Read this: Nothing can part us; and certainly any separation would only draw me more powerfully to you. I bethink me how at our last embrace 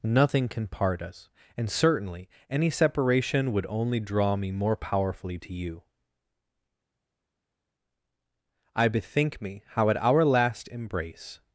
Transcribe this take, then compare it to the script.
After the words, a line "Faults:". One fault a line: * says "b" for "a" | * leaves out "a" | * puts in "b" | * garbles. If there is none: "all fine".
Nothing can part us; and certainly any separation would only draw me more powerfully to you. I bethink me how at our last embrace
Faults:
all fine